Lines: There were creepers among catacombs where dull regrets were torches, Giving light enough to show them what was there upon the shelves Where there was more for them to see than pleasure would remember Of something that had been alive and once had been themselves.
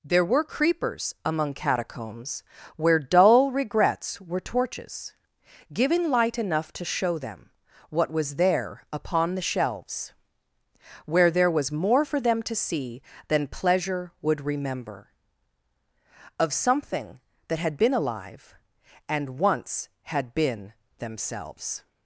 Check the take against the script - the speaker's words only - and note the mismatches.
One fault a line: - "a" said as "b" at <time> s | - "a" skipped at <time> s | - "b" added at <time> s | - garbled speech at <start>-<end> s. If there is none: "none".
none